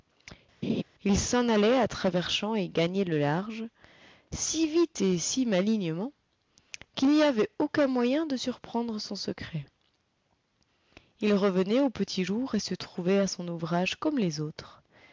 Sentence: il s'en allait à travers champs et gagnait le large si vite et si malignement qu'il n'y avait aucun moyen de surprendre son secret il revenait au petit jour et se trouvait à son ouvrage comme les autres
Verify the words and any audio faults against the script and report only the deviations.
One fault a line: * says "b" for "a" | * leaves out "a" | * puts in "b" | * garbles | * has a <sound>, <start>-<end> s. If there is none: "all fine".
* has a laugh, 0.6-0.8 s